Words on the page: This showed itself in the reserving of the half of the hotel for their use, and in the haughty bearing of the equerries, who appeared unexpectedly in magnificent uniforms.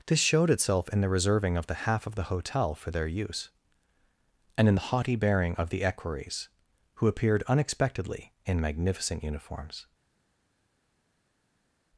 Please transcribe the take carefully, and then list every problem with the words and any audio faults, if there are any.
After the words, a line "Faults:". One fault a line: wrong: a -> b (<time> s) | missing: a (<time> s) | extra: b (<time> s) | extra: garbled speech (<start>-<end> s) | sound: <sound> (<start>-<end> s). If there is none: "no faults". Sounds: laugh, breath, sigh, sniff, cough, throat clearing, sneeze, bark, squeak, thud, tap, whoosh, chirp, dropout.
This showed itself in the reserving of the half of the hotel for their use, and in the haughty bearing of the equerries, who appeared unexpectedly in magnificent uniforms.
Faults:
no faults